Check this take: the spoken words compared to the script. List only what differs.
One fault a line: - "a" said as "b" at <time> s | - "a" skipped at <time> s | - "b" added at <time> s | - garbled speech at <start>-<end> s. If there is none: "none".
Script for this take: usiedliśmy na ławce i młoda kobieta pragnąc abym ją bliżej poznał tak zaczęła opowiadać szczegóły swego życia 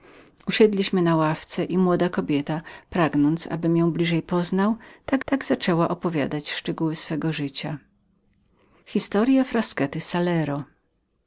- "tak" added at 5.2 s